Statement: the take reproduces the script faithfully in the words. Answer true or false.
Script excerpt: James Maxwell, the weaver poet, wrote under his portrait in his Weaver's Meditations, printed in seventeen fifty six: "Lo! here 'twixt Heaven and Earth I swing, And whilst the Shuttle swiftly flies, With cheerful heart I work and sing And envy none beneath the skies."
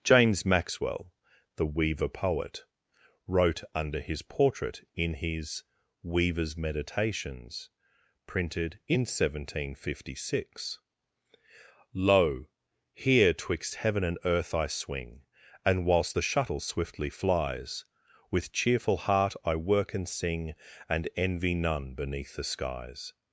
true